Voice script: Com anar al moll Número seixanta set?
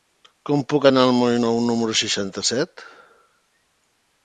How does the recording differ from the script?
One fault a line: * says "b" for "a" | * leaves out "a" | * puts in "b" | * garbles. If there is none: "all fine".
* puts in "puc"
* puts in "Nou"